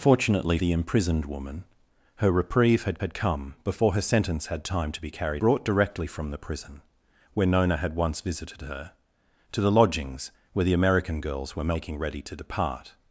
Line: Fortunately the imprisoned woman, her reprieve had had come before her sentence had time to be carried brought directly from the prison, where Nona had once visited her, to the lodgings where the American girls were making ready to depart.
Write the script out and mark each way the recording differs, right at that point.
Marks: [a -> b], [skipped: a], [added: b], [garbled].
Fortunately the imprisoned woman, her reprieve had had come before her sentence had time to be carried brought directly from the prison, where Nona had once visited her, to the lodgings where the American girls were making ready to depart.